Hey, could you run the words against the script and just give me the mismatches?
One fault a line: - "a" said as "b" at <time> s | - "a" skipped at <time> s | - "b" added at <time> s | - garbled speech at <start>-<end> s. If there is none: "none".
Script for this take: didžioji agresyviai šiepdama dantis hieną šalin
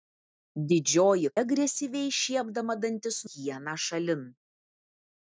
none